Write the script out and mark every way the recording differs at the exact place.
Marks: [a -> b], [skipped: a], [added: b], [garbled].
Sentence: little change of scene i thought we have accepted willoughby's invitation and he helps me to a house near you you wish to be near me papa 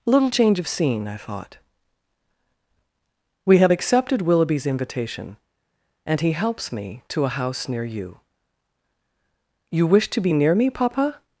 little change of scene i thought we have accepted willoughby's invitation and he helps me to a house near you you wish to be near me papa